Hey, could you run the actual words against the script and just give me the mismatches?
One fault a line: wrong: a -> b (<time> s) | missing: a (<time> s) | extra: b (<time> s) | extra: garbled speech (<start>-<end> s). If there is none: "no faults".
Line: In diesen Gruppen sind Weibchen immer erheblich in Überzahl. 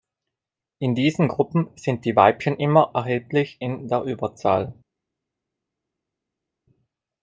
extra: die (2.0 s)
extra: der (3.9 s)